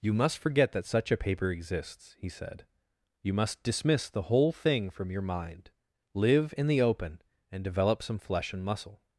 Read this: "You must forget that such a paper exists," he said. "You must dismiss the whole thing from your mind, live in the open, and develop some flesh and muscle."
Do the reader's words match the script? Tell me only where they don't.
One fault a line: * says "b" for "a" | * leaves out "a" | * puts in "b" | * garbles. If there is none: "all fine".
all fine